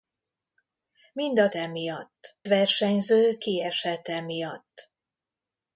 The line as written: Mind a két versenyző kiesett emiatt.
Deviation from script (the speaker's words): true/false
true